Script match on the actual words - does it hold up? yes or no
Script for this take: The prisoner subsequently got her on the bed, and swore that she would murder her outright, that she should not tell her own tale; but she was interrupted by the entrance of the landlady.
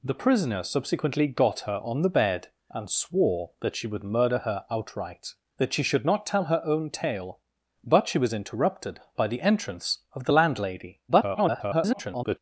no